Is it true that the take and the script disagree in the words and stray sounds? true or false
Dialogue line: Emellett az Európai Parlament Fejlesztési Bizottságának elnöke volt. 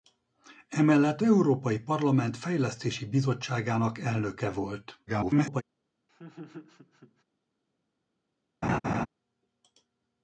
true